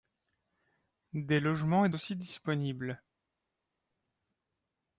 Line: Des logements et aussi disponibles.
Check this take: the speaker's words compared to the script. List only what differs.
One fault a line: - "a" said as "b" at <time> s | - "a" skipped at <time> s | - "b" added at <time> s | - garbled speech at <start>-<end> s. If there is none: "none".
none